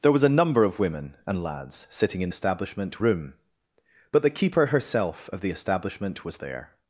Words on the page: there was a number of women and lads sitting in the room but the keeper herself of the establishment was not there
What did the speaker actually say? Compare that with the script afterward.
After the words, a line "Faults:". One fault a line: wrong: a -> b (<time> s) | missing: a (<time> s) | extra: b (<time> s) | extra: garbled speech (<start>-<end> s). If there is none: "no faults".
there was a number of women and lads sitting in establishment room but the keeper herself of the establishment was there
Faults:
wrong: the -> establishment (2.3 s)
missing: not (6.4 s)